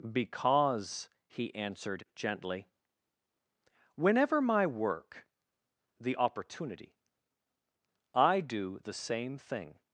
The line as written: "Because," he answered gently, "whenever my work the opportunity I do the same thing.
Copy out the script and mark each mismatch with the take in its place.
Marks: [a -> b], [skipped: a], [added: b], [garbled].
"Because," he answered gently, "whenever my work the opportunity I do the same thing.